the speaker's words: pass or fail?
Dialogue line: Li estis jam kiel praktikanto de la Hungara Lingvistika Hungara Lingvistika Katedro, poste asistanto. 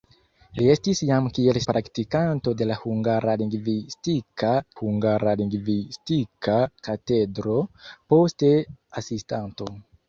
pass